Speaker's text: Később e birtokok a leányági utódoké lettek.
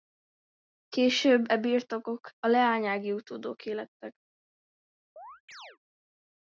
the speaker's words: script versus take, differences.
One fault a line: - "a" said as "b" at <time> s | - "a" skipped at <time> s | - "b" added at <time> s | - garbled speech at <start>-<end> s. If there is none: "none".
none